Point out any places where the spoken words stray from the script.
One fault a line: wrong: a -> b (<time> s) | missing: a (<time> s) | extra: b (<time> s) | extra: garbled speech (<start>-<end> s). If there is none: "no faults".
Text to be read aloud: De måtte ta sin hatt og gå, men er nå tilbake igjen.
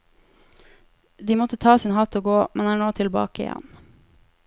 no faults